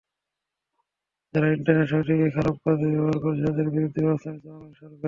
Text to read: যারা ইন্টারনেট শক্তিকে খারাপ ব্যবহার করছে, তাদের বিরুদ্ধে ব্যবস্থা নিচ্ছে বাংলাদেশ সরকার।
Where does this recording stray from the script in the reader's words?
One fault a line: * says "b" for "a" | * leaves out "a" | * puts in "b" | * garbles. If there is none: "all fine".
* puts in "কাজে"